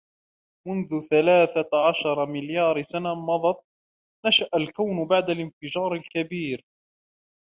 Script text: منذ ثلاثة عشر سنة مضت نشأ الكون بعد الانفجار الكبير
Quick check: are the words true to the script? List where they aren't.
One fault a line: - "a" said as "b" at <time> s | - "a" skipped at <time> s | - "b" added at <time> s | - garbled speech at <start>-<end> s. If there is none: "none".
- "مليار" added at 2.2 s